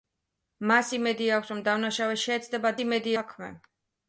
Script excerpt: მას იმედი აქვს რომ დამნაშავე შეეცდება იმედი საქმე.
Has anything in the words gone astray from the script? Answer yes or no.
no